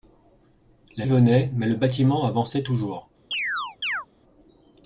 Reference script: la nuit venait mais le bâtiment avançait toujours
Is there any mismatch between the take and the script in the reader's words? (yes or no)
yes